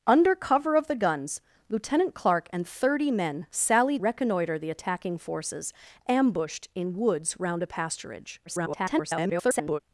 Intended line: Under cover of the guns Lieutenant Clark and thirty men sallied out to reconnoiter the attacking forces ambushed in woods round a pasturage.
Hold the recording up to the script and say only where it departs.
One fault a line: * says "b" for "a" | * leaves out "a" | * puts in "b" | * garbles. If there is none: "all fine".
* leaves out "out to"
* garbles